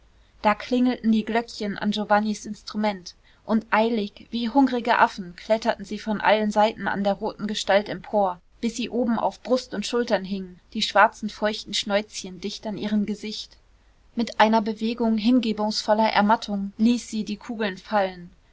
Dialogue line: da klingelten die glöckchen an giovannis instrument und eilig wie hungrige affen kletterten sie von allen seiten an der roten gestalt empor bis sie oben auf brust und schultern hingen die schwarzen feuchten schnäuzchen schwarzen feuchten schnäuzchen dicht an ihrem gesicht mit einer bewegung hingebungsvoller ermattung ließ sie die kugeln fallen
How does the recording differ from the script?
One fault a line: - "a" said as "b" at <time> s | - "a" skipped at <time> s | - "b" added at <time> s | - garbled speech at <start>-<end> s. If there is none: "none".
- "schwarzen feuchten schnäuzchen" skipped at 12.4 s